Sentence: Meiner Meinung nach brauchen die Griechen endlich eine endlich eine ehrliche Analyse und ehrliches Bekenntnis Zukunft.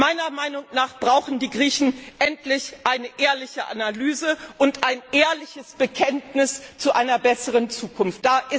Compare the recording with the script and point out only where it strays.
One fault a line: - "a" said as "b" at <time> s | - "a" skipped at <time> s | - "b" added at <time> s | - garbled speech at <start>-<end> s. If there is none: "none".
- "endlich eine" skipped at 3.1 s
- "ein" added at 4.8 s
- "zu einer besseren" added at 6.8 s